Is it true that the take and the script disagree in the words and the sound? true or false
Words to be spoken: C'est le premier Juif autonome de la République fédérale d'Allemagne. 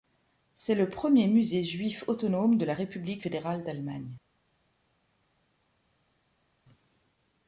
true